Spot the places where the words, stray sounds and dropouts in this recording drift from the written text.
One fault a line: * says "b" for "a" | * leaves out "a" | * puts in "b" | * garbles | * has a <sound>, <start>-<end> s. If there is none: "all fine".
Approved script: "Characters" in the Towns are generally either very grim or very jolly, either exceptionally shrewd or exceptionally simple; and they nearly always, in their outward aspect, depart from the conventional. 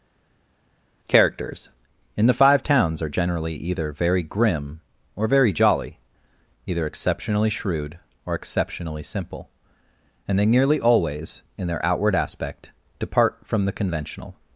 * puts in "Five"